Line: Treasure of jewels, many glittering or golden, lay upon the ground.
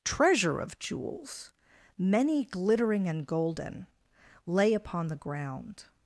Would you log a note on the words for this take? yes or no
yes